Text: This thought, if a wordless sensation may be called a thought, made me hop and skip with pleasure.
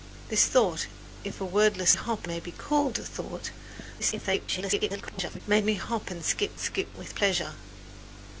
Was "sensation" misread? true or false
true